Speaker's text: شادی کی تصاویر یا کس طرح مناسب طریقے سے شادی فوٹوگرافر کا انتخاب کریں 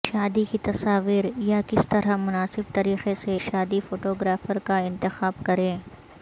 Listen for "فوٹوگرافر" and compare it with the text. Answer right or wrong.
right